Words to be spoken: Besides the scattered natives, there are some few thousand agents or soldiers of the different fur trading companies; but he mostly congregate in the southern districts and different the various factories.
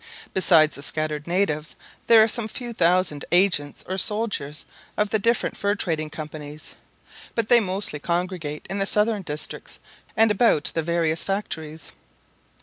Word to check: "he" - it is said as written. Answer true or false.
false